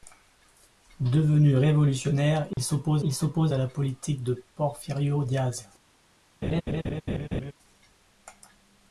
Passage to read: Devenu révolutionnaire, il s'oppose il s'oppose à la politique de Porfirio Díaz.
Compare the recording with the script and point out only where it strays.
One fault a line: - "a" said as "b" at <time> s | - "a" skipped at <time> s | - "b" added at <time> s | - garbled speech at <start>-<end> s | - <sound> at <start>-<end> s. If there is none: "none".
- dropout at 2.5-2.6 s
- laugh at 6.4-7.5 s